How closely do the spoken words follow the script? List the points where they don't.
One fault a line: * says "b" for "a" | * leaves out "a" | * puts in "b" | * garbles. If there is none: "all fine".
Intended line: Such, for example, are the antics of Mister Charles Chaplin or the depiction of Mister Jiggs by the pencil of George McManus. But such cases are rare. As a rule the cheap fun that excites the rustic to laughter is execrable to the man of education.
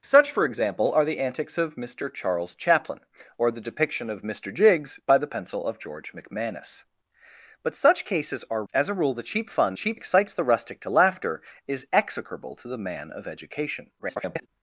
* leaves out "rare"
* says "cheap" for "that"
* garbles